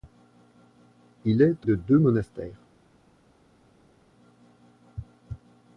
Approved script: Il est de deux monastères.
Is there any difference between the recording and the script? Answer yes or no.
no